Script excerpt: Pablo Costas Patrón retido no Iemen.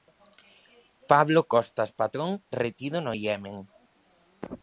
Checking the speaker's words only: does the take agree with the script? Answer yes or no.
yes